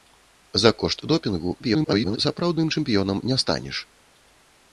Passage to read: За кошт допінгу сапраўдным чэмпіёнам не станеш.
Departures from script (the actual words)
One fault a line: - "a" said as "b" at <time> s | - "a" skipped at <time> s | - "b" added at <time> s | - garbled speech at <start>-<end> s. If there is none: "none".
- garbled speech at 1.6-2.2 s